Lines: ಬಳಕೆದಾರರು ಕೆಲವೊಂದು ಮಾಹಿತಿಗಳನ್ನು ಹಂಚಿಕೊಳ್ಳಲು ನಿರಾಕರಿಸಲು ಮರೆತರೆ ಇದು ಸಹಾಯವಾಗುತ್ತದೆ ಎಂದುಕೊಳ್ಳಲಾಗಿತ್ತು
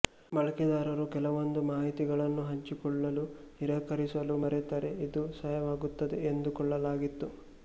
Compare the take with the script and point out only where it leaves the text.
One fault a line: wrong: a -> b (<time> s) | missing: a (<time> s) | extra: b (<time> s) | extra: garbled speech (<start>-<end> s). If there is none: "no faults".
no faults